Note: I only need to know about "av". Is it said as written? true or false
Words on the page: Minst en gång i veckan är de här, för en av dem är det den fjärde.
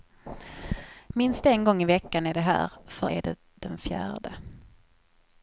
false